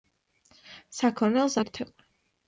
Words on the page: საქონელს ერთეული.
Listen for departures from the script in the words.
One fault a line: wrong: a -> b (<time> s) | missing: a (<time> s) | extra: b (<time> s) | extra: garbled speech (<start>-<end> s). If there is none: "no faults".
no faults